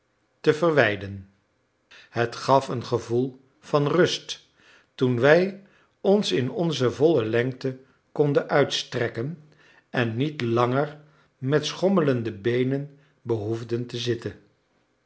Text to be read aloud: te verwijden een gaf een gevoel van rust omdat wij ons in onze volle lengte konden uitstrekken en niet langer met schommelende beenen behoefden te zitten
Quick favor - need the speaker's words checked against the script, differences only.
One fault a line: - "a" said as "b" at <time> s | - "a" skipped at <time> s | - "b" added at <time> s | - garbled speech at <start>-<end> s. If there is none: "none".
- "een" said as "het" at 2.1 s
- "omdat" said as "toen" at 4.9 s